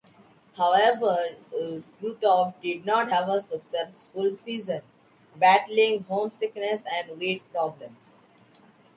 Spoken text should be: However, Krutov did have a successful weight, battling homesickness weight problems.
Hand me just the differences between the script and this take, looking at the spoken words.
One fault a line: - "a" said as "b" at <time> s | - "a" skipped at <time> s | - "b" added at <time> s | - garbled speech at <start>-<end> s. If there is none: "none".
- "not" added at 2.9 s
- "weight" said as "season" at 4.3 s
- "and" added at 6.8 s